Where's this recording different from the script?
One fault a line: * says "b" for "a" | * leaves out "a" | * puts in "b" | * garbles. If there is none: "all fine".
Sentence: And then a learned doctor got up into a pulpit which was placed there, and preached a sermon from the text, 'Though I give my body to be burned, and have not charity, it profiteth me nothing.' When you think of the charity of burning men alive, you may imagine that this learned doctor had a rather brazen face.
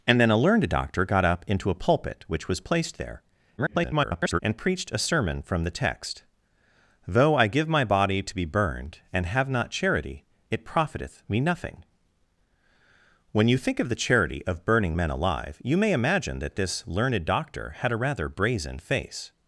* garbles